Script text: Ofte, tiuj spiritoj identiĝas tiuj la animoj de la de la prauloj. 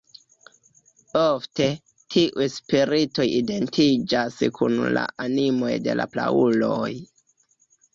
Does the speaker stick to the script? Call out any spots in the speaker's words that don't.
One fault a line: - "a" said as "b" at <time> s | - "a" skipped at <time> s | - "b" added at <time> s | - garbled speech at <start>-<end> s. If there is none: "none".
- "tiuj" said as "kun" at 4.6 s
- "de la" skipped at 6.1 s